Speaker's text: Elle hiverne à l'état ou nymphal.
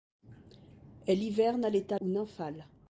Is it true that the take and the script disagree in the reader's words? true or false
false